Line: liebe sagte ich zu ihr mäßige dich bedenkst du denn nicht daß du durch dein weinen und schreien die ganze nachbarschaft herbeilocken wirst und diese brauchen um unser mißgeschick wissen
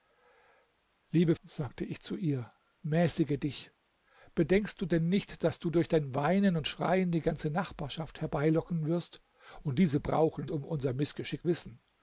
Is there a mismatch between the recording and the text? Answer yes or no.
no